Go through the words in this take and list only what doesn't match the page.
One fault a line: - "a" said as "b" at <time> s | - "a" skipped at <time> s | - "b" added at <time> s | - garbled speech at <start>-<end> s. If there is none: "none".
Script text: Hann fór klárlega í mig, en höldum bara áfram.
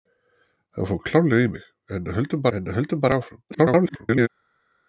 - "en höldum" added at 2.6 s
- garbled speech at 3.5-4.3 s